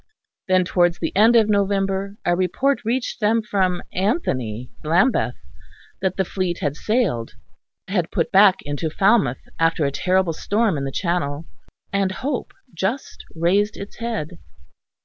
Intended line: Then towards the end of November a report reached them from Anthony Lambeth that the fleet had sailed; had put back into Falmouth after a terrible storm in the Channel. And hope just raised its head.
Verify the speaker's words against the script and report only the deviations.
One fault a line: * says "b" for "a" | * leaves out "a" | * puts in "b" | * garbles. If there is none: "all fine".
all fine